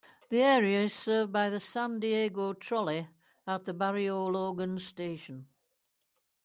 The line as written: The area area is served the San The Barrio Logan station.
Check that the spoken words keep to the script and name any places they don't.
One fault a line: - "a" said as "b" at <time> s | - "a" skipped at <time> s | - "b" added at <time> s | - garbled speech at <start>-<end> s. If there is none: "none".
- "area" skipped at 0.8 s
- "by" added at 1.3 s
- "Diego Trolley at" added at 2.0 s